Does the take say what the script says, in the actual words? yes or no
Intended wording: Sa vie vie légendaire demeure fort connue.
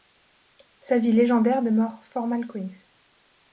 no